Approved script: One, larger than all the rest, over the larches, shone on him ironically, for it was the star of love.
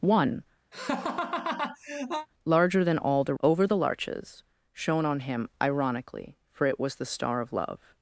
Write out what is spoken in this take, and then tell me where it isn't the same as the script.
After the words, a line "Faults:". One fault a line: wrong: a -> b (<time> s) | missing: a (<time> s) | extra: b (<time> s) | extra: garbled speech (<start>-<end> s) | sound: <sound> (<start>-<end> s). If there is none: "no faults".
One, larger than all the over the larches, shone on him ironically, for it was the star of love.
Faults:
sound: laugh (0.7-2.3 s)
missing: rest (3.3 s)